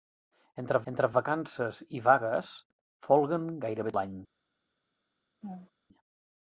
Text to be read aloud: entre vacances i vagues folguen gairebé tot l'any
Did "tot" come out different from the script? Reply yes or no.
yes